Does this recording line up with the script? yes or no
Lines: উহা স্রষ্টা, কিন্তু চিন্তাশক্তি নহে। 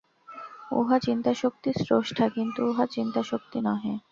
no